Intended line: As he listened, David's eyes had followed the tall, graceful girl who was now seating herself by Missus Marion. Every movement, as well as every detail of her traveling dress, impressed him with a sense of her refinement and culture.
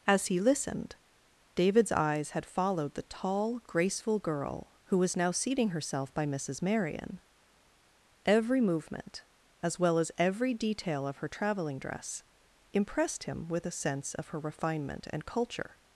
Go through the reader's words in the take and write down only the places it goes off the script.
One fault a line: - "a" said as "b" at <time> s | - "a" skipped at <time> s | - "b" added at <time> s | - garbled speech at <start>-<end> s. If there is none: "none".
none